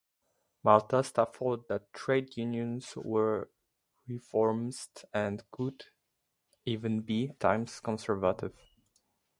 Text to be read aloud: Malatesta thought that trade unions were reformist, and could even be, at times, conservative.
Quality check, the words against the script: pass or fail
fail